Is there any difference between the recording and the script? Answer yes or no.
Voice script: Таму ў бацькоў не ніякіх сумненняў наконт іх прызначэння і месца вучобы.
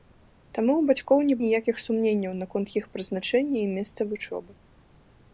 no